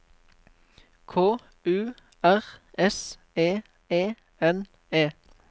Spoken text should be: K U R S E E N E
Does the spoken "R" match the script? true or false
true